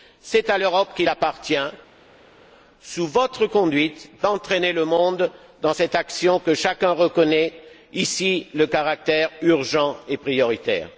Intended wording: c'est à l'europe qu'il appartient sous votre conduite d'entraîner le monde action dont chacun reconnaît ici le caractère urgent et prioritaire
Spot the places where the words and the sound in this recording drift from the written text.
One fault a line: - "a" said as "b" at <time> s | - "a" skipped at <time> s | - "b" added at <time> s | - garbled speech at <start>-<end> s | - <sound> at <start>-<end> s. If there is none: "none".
- "dans cette" added at 5.6 s